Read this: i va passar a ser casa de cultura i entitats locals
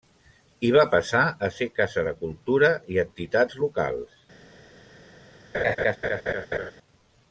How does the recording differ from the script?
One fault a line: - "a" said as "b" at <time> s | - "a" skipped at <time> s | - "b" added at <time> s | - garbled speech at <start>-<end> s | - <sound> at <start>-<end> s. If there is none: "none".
- laugh at 5.5-6.7 s